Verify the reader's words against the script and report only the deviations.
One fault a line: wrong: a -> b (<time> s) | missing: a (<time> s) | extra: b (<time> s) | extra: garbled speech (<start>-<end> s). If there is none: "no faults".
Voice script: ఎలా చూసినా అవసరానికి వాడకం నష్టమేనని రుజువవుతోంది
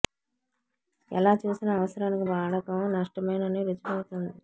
no faults